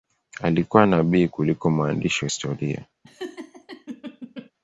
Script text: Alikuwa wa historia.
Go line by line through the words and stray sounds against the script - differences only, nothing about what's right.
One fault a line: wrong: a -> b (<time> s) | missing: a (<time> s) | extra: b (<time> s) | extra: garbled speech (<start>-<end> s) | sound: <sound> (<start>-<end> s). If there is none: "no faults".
extra: nabii kuliko mwandishi (0.8 s)
sound: laugh (3.0-4.5 s)